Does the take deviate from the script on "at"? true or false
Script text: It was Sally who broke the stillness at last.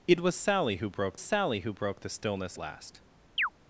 true